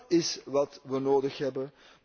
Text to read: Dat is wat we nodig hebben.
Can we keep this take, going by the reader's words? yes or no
yes